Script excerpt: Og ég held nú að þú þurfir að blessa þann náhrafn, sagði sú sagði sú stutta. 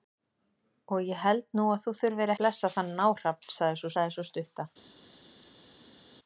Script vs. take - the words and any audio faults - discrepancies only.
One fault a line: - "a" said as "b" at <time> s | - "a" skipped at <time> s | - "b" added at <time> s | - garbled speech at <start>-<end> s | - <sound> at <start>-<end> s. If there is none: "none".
none